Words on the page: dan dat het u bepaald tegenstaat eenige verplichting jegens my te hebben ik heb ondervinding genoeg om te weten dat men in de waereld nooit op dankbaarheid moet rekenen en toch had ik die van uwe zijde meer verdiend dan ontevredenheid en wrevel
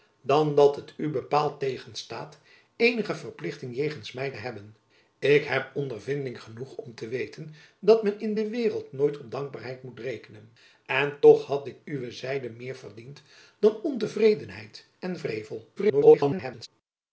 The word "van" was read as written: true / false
false